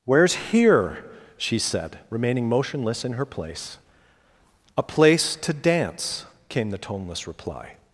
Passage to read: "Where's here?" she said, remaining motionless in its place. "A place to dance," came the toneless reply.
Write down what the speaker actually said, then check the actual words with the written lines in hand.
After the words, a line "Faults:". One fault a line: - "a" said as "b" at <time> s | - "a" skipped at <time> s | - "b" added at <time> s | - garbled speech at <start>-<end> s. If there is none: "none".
"Where's here?" she said, remaining motionless in her place. "A place to dance," came the toneless reply.
Faults:
- "its" said as "her" at 3.1 s